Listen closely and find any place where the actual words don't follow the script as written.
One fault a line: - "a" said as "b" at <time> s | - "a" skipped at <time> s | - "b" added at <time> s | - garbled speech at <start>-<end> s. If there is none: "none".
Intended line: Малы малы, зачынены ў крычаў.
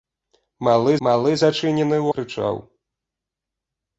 none